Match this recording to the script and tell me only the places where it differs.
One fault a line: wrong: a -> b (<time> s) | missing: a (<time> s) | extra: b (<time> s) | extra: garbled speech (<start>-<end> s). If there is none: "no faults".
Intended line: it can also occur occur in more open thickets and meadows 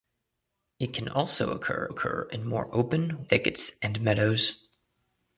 no faults